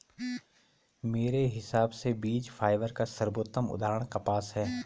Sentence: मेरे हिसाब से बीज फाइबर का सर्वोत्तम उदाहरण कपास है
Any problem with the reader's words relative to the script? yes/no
no